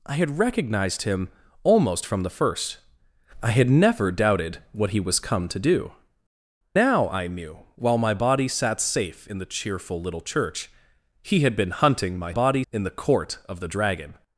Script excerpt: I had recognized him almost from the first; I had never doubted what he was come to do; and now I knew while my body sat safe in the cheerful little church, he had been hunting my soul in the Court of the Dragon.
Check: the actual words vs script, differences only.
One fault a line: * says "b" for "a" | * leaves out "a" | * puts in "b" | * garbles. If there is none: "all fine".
* leaves out "and"
* says "body" for "soul"